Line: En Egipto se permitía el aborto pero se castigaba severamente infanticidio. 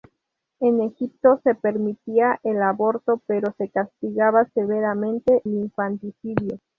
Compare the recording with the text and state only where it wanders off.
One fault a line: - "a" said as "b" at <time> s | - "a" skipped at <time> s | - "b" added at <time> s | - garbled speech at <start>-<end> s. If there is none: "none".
none